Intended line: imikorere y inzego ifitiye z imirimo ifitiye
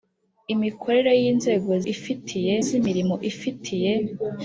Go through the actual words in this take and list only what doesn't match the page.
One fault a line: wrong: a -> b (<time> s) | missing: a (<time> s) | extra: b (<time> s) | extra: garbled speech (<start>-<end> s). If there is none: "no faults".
no faults